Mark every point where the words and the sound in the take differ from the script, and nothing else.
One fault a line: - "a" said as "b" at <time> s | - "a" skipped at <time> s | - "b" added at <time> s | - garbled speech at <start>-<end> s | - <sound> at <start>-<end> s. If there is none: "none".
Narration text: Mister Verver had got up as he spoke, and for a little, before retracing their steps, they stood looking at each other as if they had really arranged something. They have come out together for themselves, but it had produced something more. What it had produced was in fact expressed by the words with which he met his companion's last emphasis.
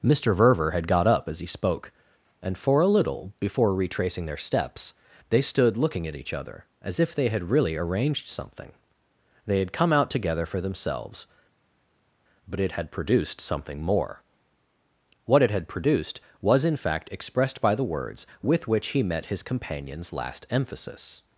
- "have" said as "had" at 9.6 s